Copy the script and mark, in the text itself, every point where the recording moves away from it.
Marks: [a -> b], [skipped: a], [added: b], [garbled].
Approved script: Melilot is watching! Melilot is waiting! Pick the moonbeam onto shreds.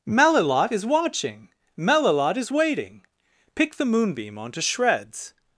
Melilot is watching! Melilot is waiting! Pick the moonbeam onto shreds.